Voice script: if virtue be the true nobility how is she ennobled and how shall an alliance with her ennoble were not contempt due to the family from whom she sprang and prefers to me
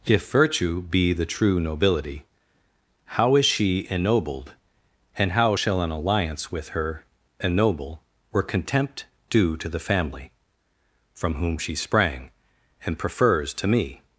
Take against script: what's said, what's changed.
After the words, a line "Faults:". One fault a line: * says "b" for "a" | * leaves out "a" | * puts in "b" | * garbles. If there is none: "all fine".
if virtue be the true nobility how is she ennobled and how shall an alliance with her ennoble were contempt due to the family from whom she sprang and prefers to me
Faults:
* leaves out "not"